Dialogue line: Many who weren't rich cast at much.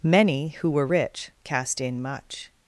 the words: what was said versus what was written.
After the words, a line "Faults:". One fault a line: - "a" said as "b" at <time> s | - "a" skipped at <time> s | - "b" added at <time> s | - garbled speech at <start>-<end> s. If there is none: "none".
Many who were rich cast in much.
Faults:
- "weren't" said as "were" at 0.7 s
- "at" said as "in" at 1.8 s